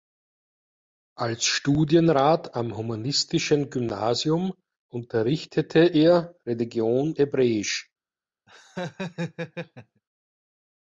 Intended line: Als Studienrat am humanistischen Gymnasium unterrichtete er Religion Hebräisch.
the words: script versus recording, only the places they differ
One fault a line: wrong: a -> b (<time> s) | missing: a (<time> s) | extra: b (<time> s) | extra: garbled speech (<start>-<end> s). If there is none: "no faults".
no faults